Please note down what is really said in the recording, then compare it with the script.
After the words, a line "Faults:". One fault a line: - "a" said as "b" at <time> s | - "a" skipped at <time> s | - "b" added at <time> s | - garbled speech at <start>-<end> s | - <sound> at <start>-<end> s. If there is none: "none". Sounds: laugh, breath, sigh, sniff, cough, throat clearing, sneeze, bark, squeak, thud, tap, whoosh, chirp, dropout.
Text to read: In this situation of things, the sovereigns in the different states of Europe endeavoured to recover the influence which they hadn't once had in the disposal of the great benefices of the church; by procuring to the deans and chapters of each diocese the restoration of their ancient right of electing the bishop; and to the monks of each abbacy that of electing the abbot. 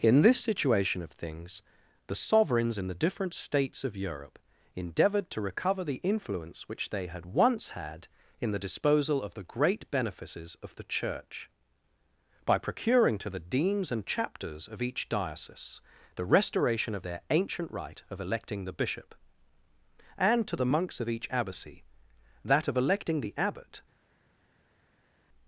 In this situation of things, the sovereigns in the different states of Europe endeavoured to recover the influence which they had once had in the disposal of the great benefices of the church; by procuring to the deans and chapters of each diocese the restoration of their ancient right of electing the bishop; and to the monks of each abbacy that of electing the abbot.
Faults:
- "hadn't" said as "had" at 7.0 s